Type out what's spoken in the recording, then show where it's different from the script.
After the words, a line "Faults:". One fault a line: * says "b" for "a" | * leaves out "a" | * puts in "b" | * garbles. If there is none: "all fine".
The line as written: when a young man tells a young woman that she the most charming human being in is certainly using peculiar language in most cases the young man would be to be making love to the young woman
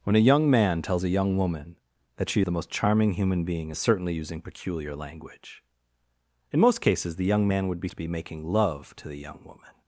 when a young man tells a young woman that she the most charming human being in is certainly using peculiar language in most cases the young man would be to be making love to the young woman
Faults:
all fine